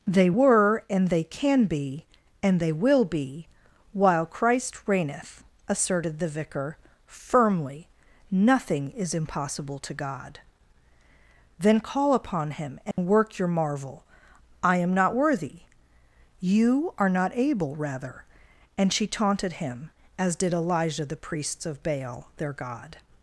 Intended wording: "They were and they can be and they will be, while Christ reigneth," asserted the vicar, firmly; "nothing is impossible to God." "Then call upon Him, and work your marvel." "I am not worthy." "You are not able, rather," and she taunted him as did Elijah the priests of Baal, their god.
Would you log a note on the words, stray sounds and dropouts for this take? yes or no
yes